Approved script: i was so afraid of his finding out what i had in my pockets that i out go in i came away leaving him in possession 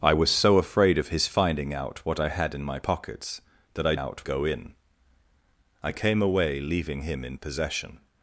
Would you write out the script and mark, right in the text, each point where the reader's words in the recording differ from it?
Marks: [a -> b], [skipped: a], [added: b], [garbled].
i was so afraid of his finding out what i had in my pockets that i out go in i came away leaving him in possession